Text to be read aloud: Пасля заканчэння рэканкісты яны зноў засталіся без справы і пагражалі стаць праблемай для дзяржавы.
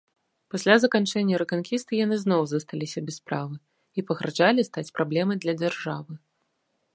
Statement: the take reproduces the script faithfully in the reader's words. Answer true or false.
true